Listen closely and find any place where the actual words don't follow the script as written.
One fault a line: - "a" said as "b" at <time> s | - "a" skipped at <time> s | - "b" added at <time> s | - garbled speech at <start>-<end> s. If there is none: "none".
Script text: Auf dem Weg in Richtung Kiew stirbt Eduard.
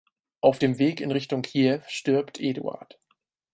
none